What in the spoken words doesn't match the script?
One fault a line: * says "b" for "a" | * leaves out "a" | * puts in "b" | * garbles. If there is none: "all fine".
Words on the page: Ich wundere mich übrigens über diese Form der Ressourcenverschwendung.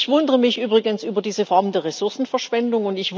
all fine